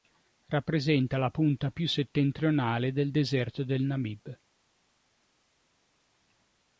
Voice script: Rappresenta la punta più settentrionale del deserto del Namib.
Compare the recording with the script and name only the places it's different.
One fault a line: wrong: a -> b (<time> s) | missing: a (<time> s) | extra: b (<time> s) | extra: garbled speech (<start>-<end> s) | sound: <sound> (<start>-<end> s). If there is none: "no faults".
no faults